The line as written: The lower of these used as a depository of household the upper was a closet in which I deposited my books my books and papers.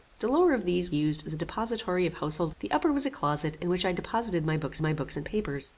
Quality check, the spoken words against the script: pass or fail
pass